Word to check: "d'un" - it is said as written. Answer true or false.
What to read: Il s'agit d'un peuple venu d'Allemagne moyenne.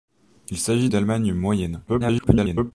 false